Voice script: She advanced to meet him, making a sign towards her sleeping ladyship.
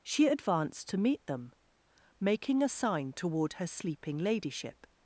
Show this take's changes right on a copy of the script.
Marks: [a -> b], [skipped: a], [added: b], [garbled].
She advanced to meet [him, -> them] making a sign [towards -> toward] her sleeping ladyship.